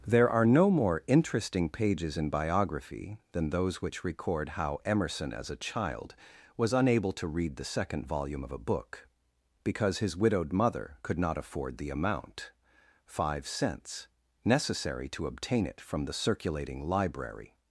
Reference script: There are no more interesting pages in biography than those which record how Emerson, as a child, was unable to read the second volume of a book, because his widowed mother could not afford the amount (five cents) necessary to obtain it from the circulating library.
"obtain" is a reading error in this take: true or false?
false